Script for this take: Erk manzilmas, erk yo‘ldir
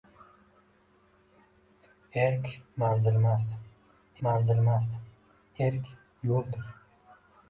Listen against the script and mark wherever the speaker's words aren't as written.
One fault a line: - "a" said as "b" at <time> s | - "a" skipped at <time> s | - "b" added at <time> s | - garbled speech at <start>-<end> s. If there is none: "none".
- "manzilmas" added at 4.3 s